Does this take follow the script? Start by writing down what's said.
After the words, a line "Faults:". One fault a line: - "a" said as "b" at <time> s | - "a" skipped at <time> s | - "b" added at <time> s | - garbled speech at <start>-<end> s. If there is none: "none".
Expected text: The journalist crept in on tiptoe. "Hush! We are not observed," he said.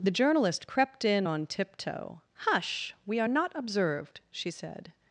The journalist crept in on tiptoe. "Hush! We are not observed," she said.
Faults:
- "he" said as "she" at 4.3 s